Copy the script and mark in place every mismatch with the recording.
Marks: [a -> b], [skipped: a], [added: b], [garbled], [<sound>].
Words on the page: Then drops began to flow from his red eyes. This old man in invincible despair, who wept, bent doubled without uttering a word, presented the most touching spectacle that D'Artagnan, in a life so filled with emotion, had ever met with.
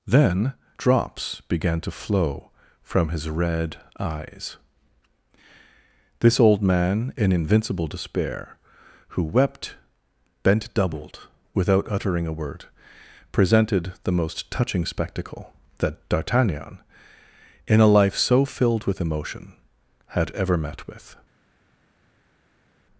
Then drops began to flow from his red eyes. This old man in invincible despair, who wept, bent doubled without uttering a word, presented the most touching spectacle that D'Artagnan, in a life so filled with emotion, had ever met with.